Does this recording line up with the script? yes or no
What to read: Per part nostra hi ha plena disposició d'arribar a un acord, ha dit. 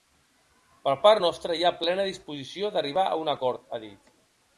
yes